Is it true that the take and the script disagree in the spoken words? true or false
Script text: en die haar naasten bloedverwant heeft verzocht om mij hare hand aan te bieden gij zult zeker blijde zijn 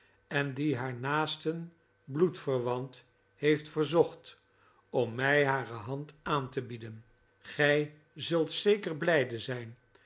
false